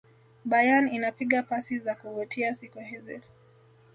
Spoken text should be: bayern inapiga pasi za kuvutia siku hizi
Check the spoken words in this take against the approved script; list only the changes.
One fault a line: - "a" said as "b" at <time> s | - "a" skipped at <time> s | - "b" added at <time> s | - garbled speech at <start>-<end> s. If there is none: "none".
none